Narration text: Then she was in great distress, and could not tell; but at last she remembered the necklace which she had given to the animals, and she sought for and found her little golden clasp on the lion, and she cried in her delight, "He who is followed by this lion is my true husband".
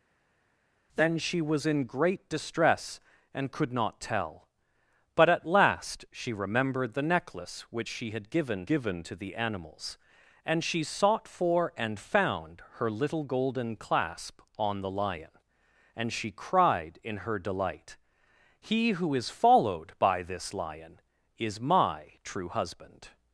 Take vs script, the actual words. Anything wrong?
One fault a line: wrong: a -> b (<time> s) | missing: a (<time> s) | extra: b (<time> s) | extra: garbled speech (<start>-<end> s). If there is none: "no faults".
extra: given (8.7 s)